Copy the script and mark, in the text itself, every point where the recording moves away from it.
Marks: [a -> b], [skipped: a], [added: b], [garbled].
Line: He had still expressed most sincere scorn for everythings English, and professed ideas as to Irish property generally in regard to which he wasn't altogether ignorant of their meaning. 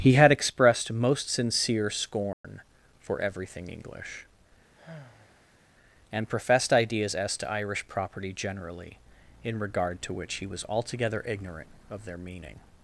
He had [skipped: still] expressed most sincere scorn for [everythings -> everything] English, and professed ideas as to Irish property generally in regard to which he [wasn't -> was] altogether ignorant of their meaning.